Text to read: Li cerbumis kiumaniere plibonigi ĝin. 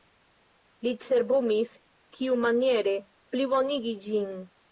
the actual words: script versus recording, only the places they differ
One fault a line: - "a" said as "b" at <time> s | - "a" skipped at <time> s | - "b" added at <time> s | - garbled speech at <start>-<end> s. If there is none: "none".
none